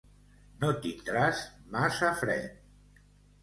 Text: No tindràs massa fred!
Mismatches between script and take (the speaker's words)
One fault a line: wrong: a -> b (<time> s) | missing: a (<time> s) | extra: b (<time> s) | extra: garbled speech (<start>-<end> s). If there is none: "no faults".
no faults